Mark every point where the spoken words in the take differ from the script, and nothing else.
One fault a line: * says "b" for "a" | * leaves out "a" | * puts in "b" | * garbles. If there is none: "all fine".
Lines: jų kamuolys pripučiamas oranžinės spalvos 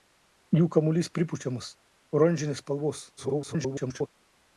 * garbles